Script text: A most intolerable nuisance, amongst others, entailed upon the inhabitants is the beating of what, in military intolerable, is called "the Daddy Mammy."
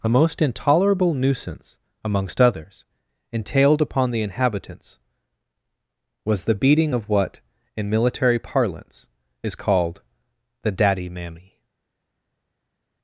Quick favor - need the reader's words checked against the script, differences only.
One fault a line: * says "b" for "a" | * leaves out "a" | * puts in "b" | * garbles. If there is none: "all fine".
* says "was" for "is"
* says "parlance" for "intolerable"